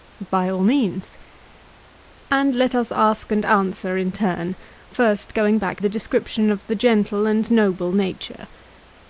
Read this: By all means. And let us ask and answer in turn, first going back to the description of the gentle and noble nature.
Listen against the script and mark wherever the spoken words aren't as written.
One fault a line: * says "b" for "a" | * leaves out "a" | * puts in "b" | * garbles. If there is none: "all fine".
* leaves out "to"